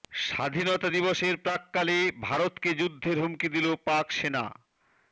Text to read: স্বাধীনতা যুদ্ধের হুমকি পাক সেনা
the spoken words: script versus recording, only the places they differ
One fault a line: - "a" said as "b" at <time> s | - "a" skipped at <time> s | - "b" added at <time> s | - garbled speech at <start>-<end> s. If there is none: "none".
- "দিবসের প্রাক্কালে ভারতকে" added at 0.9 s
- "দিল" added at 3.5 s